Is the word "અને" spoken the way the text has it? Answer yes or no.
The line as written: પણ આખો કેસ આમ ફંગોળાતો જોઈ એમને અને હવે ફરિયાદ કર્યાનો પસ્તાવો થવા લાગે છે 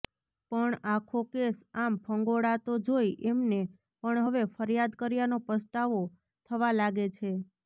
no